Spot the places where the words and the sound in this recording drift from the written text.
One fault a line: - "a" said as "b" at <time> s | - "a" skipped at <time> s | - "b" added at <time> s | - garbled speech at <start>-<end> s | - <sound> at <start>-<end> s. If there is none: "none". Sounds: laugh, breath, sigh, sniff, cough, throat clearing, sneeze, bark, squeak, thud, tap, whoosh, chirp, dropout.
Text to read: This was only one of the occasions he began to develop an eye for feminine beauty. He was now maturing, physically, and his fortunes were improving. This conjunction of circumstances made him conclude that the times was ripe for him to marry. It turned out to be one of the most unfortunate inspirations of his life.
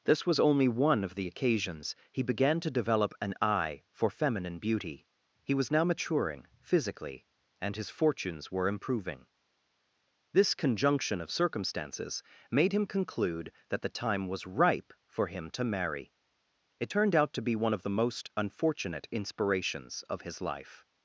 - "times" said as "time" at 13.9 s